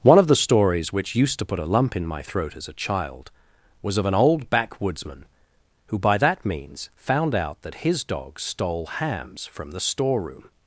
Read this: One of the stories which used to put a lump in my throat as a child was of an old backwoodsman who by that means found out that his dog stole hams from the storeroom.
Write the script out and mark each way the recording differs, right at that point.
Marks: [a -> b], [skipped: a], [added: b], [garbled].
One of the stories which used to put a lump in my throat as a child was of an old backwoodsman who by that means found out that his dog stole hams from the storeroom.